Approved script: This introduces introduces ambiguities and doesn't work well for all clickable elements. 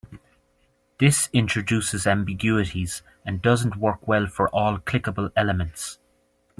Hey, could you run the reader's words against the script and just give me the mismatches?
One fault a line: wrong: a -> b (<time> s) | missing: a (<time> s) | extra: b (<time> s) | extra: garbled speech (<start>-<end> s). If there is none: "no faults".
missing: introduces (2.1 s)